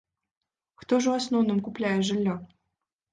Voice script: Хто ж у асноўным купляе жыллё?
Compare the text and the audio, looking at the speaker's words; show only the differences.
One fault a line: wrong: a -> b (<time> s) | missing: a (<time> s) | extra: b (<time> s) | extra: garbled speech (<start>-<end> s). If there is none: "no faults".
no faults